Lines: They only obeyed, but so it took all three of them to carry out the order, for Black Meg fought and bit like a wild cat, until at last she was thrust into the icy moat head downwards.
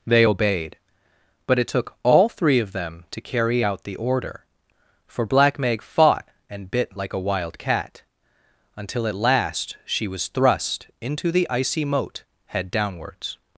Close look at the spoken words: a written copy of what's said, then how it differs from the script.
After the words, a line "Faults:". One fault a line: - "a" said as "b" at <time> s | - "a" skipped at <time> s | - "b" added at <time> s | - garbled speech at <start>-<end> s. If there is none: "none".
They obeyed, but it took all three of them to carry out the order, for Black Meg fought and bit like a wild cat, until at last she was thrust into the icy moat head downwards.
Faults:
- "only" skipped at 0.2 s
- "so" skipped at 1.6 s